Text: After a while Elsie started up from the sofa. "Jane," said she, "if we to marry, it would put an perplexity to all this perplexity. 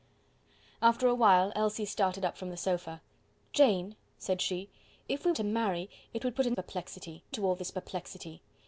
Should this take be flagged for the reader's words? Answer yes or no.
no